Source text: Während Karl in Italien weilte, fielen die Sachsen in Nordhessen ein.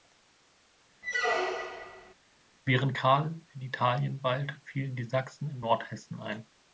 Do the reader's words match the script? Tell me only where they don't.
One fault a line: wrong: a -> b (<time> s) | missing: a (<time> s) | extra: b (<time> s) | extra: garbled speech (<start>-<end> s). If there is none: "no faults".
no faults